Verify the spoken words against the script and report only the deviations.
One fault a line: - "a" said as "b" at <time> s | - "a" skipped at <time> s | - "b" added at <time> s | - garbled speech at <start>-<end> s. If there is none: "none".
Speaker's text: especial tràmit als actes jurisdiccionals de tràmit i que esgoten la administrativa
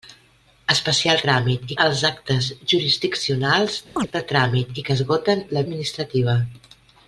none